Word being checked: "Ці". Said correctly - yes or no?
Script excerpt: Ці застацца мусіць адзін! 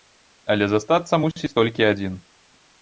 no